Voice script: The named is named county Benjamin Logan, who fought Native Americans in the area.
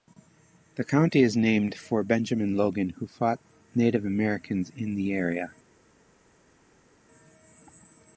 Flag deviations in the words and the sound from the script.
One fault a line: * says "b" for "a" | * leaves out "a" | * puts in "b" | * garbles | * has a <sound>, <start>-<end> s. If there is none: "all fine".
* says "county" for "named"
* says "for" for "county"